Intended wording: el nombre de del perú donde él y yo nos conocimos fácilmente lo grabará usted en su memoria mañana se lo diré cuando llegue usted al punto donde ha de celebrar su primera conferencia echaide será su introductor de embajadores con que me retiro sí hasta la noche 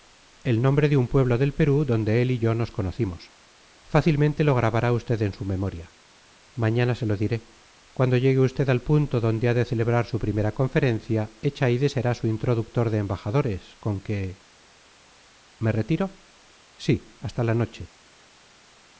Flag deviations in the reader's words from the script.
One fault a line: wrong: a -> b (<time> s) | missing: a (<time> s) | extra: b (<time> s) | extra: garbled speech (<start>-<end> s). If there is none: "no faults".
extra: un pueblo (1.0 s)